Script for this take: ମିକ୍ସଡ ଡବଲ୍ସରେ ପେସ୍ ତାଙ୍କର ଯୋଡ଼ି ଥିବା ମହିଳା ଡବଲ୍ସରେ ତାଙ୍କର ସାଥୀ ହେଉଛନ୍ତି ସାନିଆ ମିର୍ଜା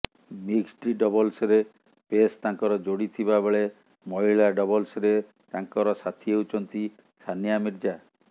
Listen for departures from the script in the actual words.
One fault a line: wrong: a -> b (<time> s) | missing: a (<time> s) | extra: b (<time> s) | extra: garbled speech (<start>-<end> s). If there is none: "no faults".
extra: ବେଳେ (3.4 s)